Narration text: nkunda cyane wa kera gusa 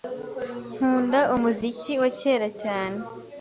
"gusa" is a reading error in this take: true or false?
true